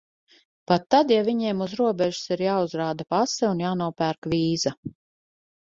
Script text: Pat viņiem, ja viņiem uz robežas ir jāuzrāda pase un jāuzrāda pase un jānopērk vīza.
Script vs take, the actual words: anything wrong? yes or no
yes